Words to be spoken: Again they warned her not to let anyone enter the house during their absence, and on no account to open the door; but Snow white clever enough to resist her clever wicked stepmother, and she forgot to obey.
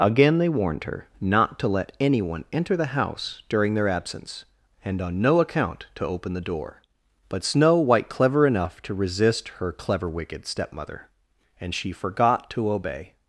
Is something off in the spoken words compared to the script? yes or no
no